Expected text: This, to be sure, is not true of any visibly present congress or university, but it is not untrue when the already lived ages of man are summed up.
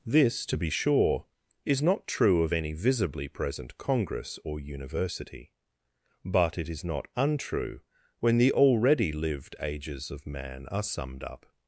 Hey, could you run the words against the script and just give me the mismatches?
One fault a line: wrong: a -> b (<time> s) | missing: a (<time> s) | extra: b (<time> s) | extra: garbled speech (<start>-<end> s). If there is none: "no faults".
no faults